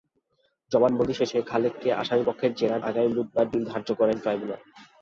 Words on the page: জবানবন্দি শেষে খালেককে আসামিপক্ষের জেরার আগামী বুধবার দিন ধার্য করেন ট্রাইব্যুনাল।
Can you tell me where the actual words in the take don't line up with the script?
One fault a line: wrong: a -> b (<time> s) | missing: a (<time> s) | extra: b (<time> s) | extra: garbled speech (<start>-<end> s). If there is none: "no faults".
no faults